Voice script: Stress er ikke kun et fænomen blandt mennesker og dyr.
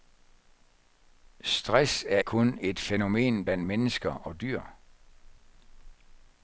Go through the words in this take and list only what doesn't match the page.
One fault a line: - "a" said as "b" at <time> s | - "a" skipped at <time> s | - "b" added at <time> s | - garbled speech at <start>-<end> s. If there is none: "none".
- "ikke" skipped at 2.2 s